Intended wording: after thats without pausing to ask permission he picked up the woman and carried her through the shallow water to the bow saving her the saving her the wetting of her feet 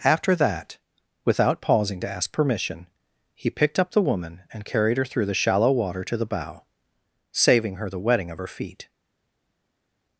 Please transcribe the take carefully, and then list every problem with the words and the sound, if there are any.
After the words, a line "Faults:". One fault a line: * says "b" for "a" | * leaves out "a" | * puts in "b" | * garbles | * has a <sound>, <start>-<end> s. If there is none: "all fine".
after that without pausing to ask permission he picked up the woman and carried her through the shallow water to the bow saving her the wetting of her feet
Faults:
* says "that" for "thats"
* leaves out "saving her the"